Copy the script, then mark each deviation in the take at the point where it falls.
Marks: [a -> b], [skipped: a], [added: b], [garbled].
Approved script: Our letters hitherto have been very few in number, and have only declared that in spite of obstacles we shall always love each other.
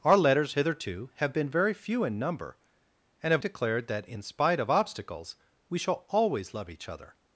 Our letters hitherto have been very few in number, and have [skipped: only] declared that in spite of obstacles we shall always love each other.